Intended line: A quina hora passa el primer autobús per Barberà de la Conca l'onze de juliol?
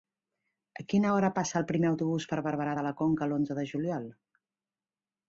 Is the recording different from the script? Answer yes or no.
no